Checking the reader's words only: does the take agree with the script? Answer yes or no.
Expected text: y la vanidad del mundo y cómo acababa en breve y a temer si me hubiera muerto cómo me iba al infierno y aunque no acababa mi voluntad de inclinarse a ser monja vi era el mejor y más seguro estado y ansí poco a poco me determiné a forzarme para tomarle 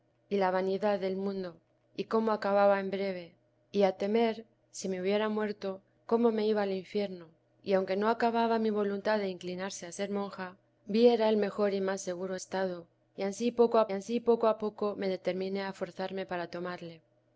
no